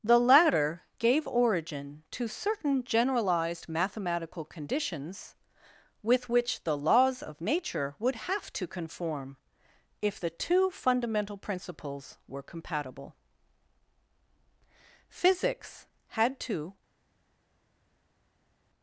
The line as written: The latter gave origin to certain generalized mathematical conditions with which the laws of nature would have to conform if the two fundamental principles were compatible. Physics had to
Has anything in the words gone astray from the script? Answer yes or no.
no